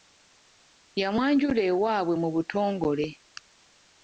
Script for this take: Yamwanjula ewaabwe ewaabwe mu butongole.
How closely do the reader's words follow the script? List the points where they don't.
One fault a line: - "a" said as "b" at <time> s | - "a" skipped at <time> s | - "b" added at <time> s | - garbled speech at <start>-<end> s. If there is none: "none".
- "ewaabwe" skipped at 2.1 s